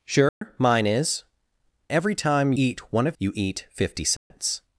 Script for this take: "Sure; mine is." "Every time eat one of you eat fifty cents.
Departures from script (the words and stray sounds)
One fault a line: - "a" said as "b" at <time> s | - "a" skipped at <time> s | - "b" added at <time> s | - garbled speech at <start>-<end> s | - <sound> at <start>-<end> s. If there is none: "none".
- dropout at 0.3-0.4 s
- dropout at 4.2-4.3 s